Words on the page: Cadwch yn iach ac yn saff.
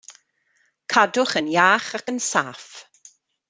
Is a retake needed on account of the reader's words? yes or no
no